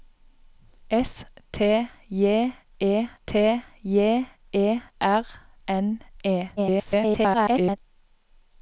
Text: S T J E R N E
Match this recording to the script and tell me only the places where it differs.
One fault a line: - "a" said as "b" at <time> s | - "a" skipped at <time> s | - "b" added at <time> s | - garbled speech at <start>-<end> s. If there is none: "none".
- "T J E" added at 3.3 s
- garbled speech at 6.6-7.8 s